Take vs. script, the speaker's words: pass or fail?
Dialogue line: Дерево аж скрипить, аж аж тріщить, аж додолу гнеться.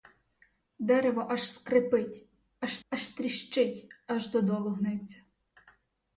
pass